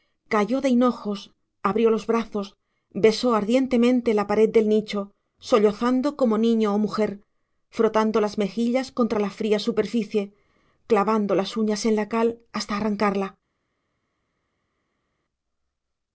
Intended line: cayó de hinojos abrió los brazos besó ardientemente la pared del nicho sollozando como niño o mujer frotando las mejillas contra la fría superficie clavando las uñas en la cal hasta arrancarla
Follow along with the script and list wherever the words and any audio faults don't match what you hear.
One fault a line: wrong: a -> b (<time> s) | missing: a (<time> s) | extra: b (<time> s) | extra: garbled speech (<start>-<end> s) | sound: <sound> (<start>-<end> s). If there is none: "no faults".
no faults